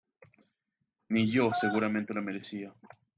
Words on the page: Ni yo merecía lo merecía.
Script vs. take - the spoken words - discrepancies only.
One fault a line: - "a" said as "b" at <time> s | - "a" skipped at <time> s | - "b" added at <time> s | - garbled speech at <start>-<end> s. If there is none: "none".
- "merecía" said as "seguramente" at 1.5 s